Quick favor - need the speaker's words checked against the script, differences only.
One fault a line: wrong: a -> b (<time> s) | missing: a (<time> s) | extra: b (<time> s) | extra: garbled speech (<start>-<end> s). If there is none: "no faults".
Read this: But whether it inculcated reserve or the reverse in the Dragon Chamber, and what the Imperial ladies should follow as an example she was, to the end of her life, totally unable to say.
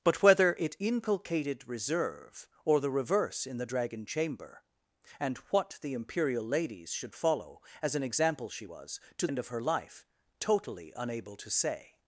missing: the (9.3 s)